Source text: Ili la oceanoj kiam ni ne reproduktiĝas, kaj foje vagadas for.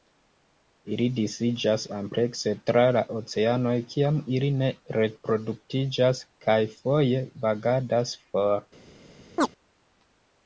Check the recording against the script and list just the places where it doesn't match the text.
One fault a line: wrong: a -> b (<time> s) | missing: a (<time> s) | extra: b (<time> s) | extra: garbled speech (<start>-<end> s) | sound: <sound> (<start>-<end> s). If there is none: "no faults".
extra: disiĝas amplekse tra (1.2 s)
wrong: ni -> ili (4.4 s)
sound: chirp (9.4-9.5 s)